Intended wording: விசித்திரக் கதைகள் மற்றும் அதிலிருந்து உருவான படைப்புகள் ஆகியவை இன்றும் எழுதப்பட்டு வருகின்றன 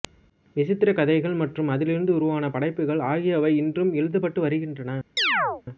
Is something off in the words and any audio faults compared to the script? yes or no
yes